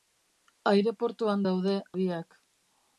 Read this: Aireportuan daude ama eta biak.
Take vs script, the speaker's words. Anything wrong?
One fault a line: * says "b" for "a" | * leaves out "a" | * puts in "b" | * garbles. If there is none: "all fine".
* leaves out "ama eta"